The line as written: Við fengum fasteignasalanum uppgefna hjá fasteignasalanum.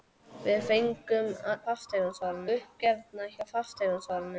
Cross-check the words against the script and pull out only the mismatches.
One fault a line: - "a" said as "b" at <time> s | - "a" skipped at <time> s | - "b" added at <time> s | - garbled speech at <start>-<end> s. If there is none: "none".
none